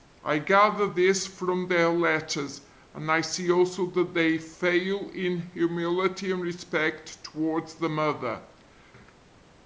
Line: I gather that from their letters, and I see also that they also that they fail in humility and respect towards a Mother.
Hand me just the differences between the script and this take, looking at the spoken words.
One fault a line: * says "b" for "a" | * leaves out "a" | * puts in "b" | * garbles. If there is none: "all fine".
* says "this" for "that"
* leaves out "also that they"
* says "the" for "a"